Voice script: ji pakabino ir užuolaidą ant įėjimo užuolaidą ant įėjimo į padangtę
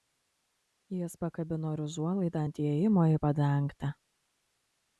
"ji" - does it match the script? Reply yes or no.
no